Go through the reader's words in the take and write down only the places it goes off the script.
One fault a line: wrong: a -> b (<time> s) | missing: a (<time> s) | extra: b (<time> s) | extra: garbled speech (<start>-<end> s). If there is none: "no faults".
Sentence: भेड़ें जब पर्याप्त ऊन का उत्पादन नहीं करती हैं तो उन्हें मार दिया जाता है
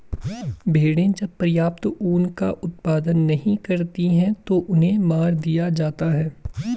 no faults